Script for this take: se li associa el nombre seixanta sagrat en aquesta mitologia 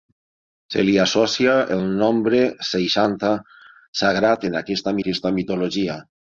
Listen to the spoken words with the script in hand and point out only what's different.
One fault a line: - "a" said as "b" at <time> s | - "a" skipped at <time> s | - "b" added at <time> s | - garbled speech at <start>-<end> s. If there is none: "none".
- "aquesta" added at 5.0 s